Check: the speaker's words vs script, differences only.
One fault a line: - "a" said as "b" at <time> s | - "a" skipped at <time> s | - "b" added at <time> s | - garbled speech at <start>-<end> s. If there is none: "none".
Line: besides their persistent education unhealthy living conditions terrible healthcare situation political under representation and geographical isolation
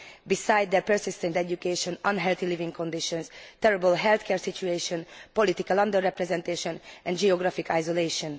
none